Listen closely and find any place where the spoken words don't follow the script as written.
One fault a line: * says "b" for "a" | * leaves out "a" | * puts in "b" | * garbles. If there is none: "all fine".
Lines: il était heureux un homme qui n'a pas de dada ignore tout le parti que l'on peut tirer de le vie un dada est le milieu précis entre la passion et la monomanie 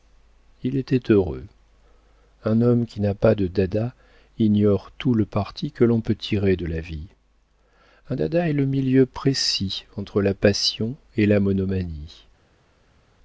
* says "la" for "le"